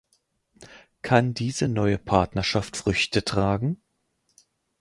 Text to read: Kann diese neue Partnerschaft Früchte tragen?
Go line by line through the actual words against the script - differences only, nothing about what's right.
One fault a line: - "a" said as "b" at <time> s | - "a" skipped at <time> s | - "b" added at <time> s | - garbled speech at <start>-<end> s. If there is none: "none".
none